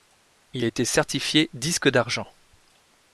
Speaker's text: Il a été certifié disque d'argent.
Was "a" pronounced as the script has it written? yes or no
yes